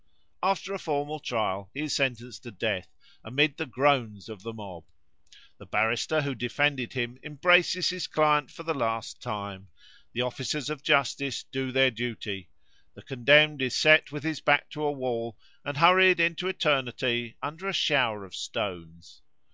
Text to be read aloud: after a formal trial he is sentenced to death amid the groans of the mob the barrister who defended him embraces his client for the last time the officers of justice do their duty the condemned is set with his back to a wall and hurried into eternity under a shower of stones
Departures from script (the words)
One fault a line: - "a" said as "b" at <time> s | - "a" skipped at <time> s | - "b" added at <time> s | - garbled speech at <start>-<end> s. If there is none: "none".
none